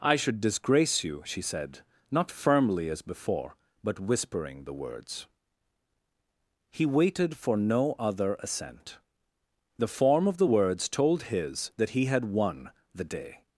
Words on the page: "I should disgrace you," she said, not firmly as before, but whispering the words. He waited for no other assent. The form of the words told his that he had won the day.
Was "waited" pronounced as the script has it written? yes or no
yes